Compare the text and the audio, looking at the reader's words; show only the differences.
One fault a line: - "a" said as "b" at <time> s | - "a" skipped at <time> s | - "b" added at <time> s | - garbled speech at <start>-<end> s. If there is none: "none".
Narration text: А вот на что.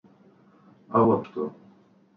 - "на" skipped at 1.3 s